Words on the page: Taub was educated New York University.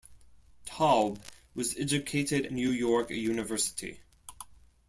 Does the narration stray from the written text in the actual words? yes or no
no